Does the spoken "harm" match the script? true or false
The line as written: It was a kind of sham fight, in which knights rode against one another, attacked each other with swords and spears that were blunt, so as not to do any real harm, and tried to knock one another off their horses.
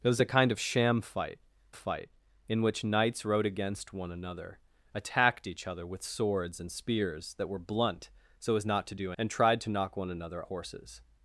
false